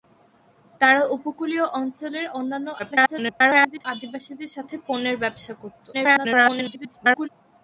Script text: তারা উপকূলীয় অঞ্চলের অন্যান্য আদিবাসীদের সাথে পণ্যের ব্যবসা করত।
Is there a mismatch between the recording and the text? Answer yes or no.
yes